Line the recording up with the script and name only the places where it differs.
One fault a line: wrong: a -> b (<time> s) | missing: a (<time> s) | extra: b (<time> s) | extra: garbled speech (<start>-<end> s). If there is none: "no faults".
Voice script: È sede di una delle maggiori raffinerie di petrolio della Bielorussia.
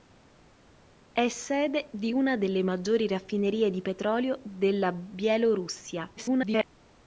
extra: garbled speech (6.2-6.7 s)